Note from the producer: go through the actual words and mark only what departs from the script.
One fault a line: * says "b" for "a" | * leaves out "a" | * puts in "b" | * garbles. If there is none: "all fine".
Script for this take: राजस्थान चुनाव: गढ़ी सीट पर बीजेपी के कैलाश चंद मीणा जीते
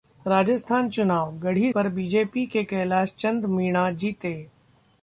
* leaves out "सीट"